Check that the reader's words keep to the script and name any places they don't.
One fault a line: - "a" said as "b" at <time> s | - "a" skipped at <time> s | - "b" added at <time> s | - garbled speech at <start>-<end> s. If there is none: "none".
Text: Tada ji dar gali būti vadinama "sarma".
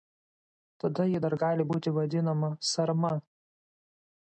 none